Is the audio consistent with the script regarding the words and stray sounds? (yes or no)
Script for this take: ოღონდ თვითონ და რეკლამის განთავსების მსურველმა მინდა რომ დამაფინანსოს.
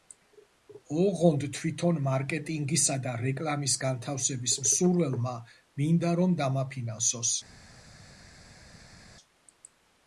no